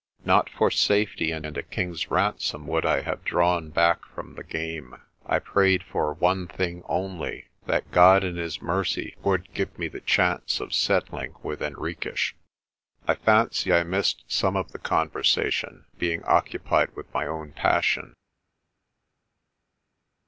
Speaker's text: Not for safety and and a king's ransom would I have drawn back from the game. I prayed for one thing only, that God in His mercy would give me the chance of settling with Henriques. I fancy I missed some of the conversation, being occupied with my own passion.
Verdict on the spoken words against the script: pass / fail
pass